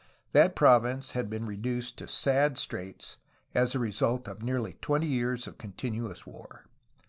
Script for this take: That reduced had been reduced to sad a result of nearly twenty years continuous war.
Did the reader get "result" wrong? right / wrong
right